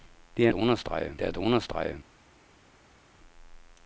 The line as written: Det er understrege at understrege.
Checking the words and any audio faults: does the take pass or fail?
pass